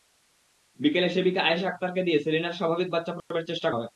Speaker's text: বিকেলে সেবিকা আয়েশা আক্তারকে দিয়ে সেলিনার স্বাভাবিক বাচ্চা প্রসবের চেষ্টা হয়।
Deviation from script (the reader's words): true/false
false